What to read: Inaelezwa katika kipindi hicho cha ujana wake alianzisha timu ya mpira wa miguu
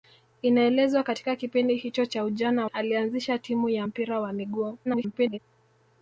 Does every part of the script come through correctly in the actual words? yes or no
no